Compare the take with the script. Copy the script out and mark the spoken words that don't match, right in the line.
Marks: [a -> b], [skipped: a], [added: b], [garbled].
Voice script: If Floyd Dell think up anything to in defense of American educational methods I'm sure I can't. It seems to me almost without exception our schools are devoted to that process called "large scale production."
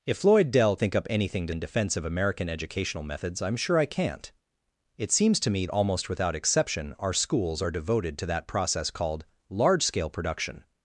If Floyd Dell think up anything to in defense of American educational methods I'm sure I can't. It seems to me almost without exception our schools are devoted to that process called "large scale production."